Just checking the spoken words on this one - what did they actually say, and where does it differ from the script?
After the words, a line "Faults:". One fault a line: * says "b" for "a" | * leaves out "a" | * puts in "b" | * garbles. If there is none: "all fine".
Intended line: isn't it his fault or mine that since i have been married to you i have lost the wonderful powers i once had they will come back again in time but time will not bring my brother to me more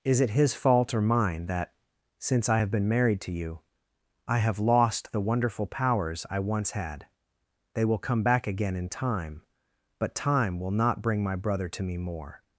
is it his fault or mine that since i have been married to you i have lost the wonderful powers i once had they will come back again in time but time will not bring my brother to me more
Faults:
* says "is" for "isn't"